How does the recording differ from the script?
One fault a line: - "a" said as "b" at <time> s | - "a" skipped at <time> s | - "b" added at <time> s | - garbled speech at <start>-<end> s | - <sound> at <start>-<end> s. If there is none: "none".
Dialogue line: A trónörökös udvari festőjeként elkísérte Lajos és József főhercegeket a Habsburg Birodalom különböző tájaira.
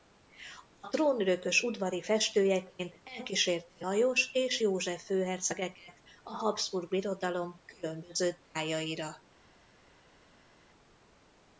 none